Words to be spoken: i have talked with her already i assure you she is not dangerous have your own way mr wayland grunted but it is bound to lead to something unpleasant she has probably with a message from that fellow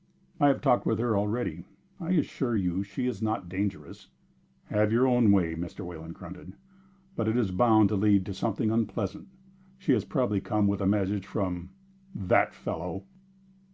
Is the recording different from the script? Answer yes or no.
yes